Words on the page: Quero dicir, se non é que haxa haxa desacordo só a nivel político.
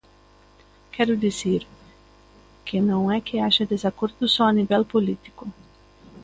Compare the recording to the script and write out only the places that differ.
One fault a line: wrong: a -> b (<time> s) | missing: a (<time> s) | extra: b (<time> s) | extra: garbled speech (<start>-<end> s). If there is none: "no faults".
wrong: se -> que (2.6 s)
missing: haxa (3.7 s)